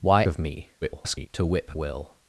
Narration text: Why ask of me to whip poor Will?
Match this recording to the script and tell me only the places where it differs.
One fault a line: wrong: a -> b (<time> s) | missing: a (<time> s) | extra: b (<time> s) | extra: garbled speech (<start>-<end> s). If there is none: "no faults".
missing: ask (0.2 s)
extra: garbled speech (0.8-1.3 s)
missing: poor (1.7 s)